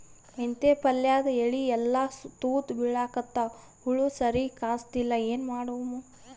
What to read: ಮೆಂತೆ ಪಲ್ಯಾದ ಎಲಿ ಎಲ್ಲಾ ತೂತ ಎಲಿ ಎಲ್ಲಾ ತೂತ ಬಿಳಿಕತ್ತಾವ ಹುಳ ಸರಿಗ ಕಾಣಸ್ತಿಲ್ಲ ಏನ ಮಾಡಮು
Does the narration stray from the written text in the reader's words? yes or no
yes